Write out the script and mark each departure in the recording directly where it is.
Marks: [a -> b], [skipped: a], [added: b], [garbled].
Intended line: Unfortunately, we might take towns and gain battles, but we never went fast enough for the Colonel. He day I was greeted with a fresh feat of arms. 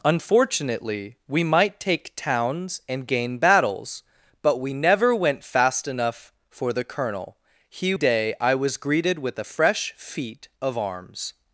Unfortunately, we might take towns and gain battles, but we never went fast enough for the Colonel. He day I was greeted with a fresh feat of arms.